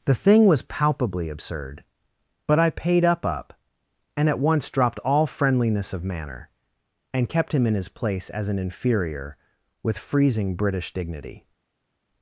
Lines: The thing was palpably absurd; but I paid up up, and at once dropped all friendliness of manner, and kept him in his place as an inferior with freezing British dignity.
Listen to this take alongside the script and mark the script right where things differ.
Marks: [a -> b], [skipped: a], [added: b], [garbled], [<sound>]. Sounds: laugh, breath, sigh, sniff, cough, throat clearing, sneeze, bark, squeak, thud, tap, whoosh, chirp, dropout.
The thing was palpably absurd; but I paid up up, and at once dropped all friendliness of manner, and kept him in his place as an inferior with freezing British dignity.